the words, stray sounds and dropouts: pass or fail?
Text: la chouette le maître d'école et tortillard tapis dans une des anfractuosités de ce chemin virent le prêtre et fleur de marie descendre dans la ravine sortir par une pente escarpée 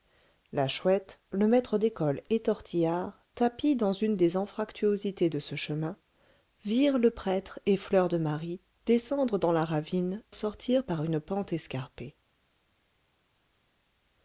pass